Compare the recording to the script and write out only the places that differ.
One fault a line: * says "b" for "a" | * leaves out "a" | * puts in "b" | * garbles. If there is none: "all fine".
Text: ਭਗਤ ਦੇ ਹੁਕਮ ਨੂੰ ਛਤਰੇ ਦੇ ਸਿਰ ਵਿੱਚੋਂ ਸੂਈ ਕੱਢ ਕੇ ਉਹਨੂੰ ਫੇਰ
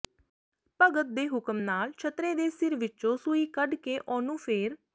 * says "ਨਾਲ" for "ਨੂੰ"